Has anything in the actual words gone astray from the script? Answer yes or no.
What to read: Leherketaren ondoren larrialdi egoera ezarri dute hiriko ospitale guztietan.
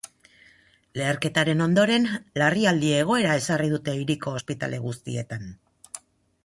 no